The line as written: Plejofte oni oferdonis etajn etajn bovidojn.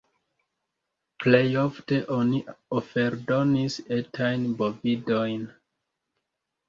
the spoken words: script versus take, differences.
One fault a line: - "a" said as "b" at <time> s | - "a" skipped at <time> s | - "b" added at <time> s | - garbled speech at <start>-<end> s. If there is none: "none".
- "etajn" skipped at 4.5 s